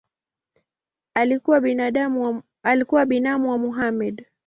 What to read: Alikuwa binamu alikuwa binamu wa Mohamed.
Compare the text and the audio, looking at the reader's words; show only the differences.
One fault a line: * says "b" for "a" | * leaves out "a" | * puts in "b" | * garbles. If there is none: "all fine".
* leaves out "alikuwa binamu"